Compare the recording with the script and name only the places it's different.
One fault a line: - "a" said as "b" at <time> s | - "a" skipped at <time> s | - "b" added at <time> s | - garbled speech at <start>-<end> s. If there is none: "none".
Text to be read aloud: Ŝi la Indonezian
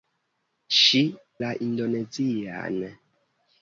none